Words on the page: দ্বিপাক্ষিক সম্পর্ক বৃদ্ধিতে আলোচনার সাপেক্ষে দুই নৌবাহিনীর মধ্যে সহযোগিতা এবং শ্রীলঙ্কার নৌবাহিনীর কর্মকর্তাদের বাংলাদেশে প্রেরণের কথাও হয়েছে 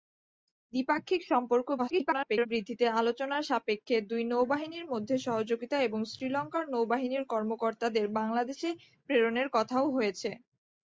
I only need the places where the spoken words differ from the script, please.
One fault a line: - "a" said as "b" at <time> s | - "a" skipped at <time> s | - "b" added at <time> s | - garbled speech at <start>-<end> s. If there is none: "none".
- garbled speech at 1.8-2.5 s